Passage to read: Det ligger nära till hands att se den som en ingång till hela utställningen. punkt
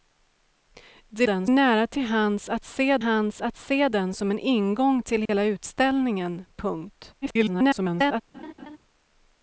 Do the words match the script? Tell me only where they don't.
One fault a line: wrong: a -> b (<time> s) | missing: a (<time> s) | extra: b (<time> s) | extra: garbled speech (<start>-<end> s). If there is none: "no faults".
wrong: ligger -> den (1.2 s)
extra: hands att se (3.0 s)
extra: garbled speech (7.2-8.2 s)